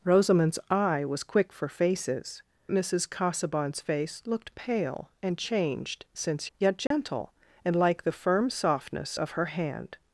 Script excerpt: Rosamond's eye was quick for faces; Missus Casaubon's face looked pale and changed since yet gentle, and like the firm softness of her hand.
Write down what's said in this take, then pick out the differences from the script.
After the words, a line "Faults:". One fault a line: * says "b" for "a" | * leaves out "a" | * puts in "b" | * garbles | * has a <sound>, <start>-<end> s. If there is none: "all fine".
Rosamond's eye was quick for faces; Missus Casaubon's face looked pale and changed since yet gentle, and like the firm softness of her hand.
Faults:
* has a dropout, 6.9-6.9 s